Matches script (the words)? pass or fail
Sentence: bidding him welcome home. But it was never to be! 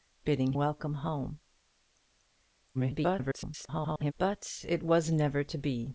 fail